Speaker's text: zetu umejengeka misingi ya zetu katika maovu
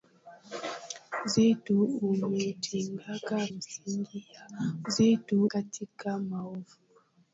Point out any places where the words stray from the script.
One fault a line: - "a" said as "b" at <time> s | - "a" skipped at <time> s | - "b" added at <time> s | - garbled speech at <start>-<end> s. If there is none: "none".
none